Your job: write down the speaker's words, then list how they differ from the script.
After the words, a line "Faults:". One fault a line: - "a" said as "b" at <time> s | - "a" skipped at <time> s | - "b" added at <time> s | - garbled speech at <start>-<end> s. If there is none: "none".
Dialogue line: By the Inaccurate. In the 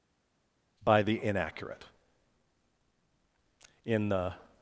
By the Inaccurate. In the
Faults:
none